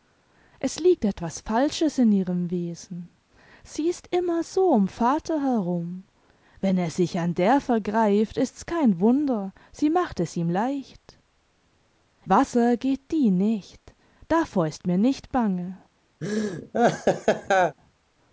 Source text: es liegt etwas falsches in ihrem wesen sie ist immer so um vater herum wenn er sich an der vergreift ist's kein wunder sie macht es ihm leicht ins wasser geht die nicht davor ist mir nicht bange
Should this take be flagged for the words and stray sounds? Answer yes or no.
yes